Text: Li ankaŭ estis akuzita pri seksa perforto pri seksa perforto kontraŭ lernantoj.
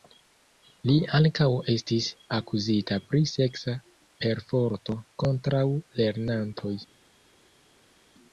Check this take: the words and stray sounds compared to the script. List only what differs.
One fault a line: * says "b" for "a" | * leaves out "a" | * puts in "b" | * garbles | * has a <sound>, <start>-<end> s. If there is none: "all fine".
* leaves out "pri seksa perforto"